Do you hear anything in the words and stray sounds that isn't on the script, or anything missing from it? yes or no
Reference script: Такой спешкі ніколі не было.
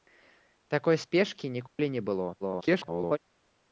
yes